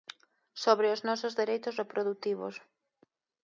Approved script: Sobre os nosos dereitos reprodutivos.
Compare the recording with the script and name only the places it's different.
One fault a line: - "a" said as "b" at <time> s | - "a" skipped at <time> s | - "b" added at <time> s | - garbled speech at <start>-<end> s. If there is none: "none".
none